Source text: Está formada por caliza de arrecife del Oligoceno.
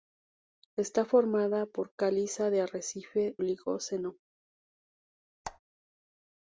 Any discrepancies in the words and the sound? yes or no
yes